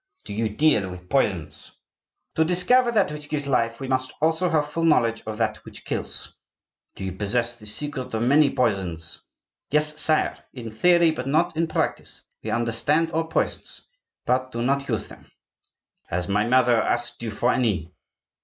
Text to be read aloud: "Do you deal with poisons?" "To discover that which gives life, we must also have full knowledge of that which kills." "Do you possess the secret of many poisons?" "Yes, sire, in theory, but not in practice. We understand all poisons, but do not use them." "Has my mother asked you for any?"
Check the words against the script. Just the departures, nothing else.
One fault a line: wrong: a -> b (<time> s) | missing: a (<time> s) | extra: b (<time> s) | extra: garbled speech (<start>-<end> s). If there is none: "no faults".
no faults